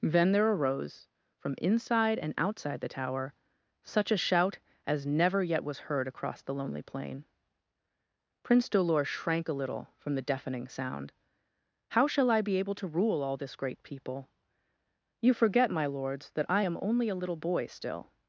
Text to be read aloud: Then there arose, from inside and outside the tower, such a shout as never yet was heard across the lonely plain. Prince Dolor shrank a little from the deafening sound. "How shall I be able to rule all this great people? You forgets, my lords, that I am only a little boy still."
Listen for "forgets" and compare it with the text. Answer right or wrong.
wrong